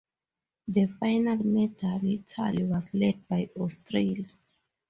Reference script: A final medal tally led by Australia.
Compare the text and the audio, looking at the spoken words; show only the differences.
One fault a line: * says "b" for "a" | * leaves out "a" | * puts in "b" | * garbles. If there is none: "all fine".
* says "The" for "A"
* puts in "was"